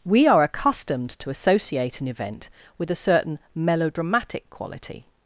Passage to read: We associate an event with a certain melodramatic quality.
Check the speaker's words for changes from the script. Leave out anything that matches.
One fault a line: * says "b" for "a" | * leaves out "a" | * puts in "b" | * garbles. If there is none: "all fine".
* puts in "are accustomed to"